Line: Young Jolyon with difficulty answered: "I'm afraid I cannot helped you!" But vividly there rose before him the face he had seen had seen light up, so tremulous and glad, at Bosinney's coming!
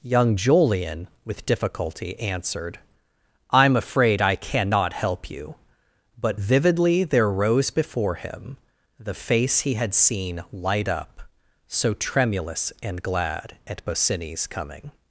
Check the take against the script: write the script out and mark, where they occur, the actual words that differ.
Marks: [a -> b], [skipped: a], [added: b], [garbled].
Young Jolyon with difficulty answered: "I'm afraid I cannot [helped -> help] you!" But vividly there rose before him the face he had seen [skipped: had seen] light up, so tremulous and glad, at Bosinney's coming!